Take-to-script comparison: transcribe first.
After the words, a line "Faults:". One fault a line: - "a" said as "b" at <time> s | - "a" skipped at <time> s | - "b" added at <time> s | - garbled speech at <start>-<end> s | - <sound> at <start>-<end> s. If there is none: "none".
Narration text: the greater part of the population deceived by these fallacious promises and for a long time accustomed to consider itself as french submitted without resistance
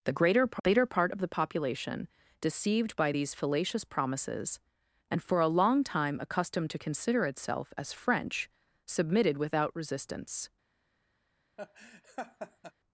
the greater greater part of the population deceived by these fallacious promises and for a long time accustomed to consider itself as french submitted without resistance
Faults:
- "greater" added at 0.5 s
- laugh at 11.6-12.7 s